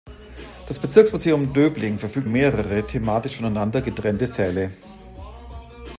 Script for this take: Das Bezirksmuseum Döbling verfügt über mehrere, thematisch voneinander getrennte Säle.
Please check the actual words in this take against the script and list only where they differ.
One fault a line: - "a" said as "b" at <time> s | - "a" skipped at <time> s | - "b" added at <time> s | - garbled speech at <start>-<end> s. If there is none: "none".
- "über" skipped at 2.3 s